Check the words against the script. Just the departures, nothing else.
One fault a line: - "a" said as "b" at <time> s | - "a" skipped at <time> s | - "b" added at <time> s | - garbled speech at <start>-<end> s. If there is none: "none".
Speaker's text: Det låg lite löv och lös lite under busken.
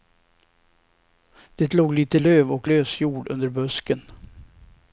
- "lite" said as "jord" at 3.0 s